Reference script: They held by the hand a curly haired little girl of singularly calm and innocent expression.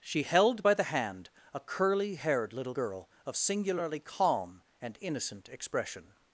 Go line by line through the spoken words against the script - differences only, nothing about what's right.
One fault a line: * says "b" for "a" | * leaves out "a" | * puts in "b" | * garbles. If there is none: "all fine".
* says "She" for "They"